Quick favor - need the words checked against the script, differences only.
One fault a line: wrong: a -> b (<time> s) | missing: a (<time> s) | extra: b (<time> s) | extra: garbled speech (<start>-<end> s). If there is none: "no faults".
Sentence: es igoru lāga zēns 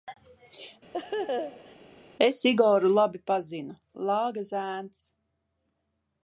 extra: labi pazinu (3.0 s)